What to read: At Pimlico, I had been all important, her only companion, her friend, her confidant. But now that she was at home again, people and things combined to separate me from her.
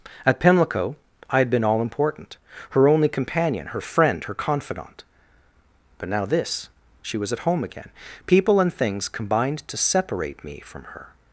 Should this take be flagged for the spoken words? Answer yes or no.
yes